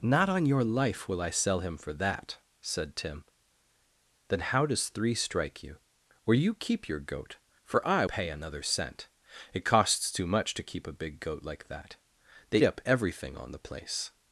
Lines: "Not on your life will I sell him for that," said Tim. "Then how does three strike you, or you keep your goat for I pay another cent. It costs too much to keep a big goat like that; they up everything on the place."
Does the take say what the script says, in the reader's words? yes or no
yes